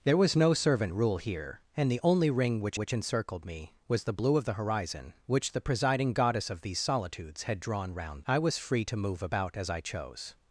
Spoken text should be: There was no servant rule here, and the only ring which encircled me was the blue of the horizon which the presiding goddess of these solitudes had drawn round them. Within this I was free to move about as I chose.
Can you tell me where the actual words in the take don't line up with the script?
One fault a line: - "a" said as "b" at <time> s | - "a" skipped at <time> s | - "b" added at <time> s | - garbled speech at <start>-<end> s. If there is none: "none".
- "which" added at 2.7 s
- "them Within this" skipped at 8.2 s